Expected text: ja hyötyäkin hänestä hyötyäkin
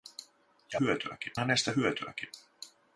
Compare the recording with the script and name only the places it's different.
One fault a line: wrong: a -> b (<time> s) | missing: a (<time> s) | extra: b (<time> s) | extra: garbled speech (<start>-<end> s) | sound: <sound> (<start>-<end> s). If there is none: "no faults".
no faults